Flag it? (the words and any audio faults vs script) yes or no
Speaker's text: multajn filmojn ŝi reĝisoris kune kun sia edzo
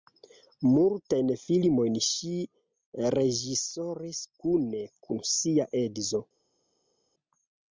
no